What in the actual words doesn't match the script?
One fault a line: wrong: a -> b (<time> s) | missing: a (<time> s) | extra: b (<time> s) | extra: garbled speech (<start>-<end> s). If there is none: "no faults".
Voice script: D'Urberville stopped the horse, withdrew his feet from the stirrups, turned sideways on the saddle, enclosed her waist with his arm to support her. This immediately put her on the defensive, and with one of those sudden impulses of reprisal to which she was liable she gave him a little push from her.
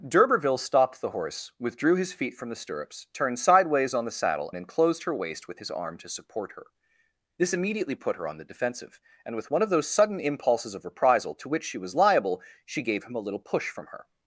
no faults